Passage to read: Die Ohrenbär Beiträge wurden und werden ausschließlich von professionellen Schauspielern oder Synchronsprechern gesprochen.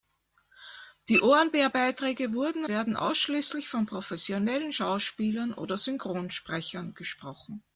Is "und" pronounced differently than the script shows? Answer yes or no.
yes